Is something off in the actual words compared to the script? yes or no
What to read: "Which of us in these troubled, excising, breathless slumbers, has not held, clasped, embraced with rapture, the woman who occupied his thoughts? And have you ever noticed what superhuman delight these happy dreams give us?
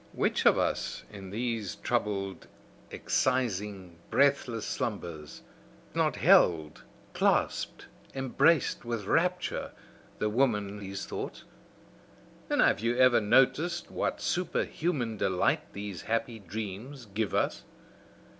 yes